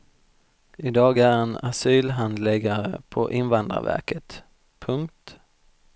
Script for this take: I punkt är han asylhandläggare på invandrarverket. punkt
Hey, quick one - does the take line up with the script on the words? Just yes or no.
no